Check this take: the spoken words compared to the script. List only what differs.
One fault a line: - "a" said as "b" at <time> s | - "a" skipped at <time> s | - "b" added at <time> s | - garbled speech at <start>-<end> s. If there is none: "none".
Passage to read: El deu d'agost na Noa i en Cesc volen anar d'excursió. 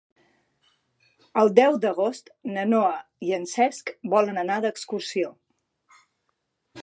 none